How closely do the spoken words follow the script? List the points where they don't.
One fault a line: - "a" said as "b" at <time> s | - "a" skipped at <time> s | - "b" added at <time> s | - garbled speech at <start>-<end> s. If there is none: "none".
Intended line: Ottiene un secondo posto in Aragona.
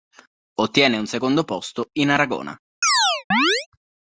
none